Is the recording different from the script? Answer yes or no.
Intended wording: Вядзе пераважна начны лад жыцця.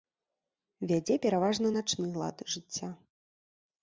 no